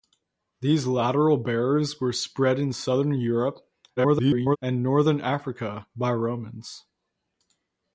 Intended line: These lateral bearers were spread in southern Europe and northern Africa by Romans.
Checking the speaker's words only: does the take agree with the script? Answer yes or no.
no